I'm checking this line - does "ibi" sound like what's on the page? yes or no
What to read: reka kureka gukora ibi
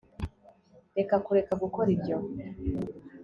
no